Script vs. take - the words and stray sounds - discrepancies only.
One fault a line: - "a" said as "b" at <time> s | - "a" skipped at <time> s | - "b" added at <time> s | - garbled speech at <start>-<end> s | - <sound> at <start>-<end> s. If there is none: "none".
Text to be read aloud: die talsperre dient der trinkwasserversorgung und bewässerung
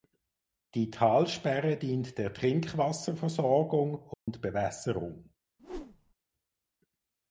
- dropout at 4.1-4.3 s
- whoosh at 5.6-6.1 s